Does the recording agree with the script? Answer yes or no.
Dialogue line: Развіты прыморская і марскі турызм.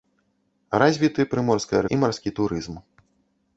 yes